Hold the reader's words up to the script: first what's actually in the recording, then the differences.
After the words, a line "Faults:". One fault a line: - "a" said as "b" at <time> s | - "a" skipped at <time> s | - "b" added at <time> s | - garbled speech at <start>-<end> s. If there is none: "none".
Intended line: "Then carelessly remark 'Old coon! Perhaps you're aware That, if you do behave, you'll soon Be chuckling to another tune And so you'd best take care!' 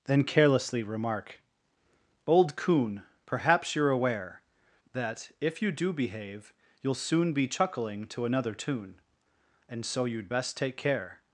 "Then carelessly remark 'Old coon! Perhaps you're aware That, if you do behave, you'll soon Be chuckling to another tune And so you'd best take care!'
Faults:
none